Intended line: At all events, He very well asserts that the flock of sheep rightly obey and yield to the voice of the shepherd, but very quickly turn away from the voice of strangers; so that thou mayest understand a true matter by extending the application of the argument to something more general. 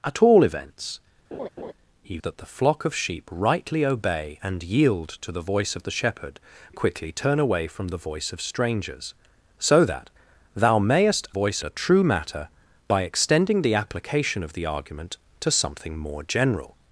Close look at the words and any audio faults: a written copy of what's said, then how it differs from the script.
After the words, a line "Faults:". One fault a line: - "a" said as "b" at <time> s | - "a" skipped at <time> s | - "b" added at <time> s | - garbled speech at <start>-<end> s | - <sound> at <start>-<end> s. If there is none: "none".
At all events, He that the flock of sheep rightly obey and yield to the voice of the shepherd, quickly turn away from the voice of strangers; so that thou mayest voice a true matter by extending the application of the argument to something more general.
Faults:
- laugh at 1.3-1.7 s
- "very well asserts" skipped at 2.2 s
- "but very" skipped at 6.4 s
- "understand" said as "voice" at 11.3 s